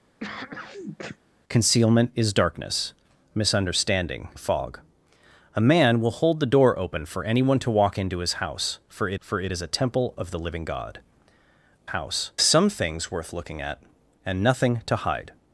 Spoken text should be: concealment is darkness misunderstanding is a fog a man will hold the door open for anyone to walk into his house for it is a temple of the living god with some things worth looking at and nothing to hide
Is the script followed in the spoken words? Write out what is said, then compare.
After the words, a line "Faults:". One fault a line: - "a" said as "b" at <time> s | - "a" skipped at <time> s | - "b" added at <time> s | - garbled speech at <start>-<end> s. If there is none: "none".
concealment is darkness misunderstanding a fog a man will hold the door open for anyone to walk into his house for it for it is a temple of the living god house some things worth looking at and nothing to hide
Faults:
- "is" skipped at 4.3 s
- "for it" added at 9.2 s
- "with" said as "house" at 11.9 s